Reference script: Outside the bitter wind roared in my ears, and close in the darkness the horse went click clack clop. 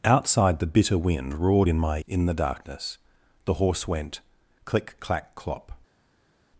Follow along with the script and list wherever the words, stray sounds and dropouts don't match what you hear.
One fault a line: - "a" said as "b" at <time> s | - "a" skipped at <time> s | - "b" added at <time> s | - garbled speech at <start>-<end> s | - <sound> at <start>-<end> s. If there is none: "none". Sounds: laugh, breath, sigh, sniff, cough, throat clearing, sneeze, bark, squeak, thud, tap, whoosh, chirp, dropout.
- "ears and close" skipped at 2.0 s